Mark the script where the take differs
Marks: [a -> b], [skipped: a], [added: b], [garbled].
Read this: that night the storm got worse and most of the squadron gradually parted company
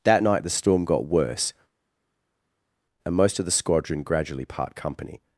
that night the storm got worse and most of the squadron gradually [parted -> part] company